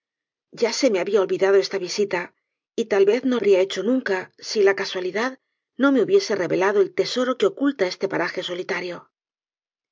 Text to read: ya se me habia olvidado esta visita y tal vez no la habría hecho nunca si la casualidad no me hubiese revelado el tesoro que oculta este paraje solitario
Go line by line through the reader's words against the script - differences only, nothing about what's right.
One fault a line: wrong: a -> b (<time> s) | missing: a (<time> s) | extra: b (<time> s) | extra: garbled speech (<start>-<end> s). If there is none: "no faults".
missing: la (3.4 s)